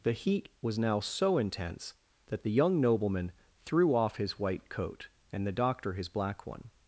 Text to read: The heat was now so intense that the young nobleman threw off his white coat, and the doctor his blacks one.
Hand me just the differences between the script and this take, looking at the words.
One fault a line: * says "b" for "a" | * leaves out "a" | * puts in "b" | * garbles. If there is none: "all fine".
* says "black" for "blacks"